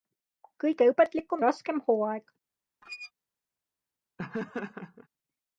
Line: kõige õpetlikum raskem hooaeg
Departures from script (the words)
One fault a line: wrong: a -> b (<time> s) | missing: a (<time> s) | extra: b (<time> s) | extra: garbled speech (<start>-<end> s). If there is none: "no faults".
no faults